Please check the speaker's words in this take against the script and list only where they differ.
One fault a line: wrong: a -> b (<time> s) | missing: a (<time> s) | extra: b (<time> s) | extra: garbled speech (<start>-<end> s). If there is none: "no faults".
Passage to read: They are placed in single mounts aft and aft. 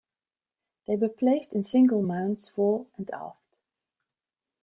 wrong: are -> were (0.9 s)
wrong: aft -> fore (2.5 s)